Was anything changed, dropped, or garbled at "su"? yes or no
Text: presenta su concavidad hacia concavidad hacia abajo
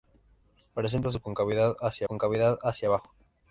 no